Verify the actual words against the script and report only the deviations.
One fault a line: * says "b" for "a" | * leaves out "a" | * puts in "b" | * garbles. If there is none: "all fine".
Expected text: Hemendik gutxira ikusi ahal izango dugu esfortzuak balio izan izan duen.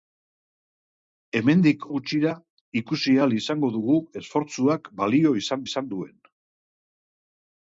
all fine